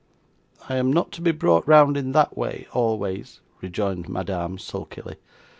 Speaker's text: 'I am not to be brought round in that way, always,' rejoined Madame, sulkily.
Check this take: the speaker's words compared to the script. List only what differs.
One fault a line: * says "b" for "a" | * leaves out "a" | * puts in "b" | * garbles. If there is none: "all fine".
all fine